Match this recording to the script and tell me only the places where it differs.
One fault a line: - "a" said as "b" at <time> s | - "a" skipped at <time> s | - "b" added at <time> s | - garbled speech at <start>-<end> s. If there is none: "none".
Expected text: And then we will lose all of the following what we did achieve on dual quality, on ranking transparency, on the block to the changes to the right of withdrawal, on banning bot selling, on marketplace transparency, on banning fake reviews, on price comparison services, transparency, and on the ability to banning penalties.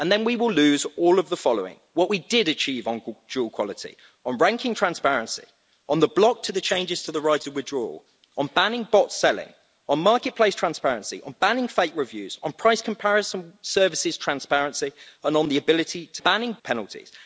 none